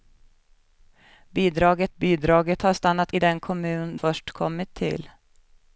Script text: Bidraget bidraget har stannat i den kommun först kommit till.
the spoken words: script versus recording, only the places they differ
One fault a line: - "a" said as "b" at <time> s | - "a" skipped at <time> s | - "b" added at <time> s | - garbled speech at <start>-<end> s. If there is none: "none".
none